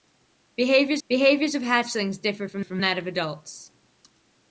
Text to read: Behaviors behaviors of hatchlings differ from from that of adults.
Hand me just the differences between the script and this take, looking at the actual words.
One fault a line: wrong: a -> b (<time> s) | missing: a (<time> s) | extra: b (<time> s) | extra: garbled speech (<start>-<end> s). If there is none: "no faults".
no faults